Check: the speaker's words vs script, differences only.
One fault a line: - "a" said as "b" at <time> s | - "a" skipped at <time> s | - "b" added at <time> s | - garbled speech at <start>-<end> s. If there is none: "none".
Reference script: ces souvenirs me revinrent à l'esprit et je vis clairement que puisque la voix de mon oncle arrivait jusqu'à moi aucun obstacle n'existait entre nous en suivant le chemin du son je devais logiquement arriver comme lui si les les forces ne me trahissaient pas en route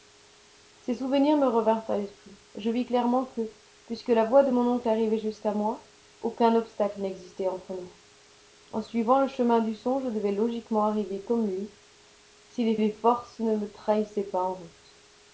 none